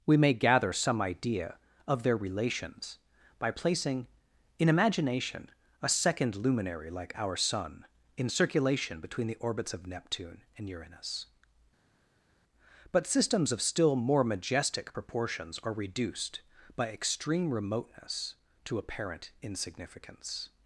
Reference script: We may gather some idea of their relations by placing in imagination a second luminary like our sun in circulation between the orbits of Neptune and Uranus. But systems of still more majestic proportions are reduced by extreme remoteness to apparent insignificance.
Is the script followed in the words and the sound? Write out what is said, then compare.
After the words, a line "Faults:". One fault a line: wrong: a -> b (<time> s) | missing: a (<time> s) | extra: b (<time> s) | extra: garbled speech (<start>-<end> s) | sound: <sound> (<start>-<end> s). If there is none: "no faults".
We may gather some idea of their relations by placing in imagination a second luminary like our sun in circulation between the orbits of Neptune and Uranus. But systems of still more majestic proportions are reduced by extreme remoteness to apparent insignificance.
Faults:
no faults